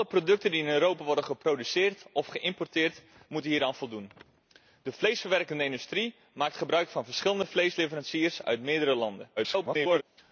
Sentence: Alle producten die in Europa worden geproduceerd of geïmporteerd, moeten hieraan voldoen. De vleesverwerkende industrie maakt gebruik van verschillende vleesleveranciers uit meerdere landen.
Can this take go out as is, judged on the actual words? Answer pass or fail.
fail